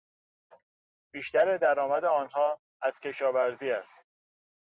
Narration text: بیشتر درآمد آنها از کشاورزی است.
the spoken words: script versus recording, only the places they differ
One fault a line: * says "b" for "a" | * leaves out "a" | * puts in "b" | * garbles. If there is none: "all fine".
all fine